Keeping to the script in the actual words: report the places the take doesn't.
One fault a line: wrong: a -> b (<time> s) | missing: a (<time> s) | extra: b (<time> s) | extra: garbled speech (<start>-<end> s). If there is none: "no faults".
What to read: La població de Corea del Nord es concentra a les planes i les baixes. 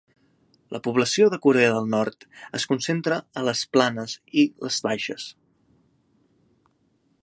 no faults